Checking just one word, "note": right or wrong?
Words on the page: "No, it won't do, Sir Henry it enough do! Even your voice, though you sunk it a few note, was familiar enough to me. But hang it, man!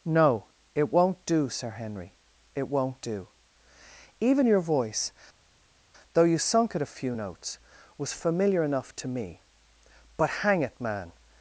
wrong